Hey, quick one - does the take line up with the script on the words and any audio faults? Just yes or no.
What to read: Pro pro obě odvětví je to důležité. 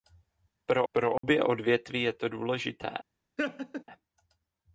no